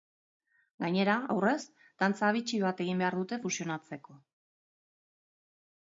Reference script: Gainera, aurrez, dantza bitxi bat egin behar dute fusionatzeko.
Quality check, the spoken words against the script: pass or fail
pass